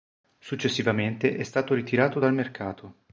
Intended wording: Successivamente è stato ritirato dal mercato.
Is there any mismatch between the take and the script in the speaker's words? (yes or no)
no